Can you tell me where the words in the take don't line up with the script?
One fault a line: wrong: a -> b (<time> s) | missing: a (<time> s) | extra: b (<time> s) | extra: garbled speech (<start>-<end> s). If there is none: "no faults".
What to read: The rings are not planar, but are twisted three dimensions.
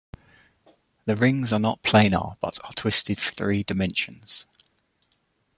no faults